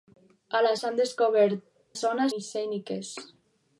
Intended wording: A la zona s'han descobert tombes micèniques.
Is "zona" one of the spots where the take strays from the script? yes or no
yes